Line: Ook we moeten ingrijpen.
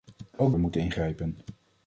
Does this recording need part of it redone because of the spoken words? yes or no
no